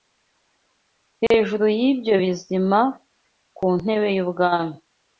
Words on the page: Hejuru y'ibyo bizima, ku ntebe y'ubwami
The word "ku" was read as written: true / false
true